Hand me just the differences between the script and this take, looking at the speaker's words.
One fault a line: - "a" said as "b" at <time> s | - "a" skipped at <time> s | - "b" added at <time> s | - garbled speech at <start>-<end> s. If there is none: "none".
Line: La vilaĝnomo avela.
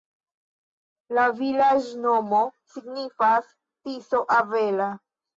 - "signifas Tiso" added at 2.7 s